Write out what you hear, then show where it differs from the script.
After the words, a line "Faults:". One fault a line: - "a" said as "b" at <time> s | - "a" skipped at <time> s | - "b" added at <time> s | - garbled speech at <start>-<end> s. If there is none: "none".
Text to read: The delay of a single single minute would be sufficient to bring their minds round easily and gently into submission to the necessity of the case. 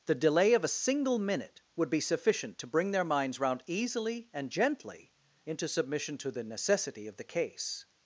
The delay of a single minute would be sufficient to bring their minds round easily and gently into submission to the necessity of the case.
Faults:
- "single" skipped at 1.2 s